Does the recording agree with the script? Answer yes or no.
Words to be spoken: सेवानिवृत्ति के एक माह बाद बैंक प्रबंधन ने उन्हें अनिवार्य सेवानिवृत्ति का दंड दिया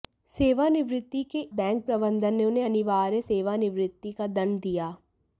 no